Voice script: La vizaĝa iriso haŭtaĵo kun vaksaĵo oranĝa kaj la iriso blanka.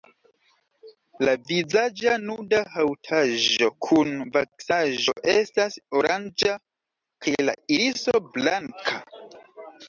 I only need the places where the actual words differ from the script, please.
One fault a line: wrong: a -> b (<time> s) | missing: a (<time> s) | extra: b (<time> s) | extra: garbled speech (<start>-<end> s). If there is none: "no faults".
wrong: iriso -> nuda (2.2 s)
extra: estas (5.3 s)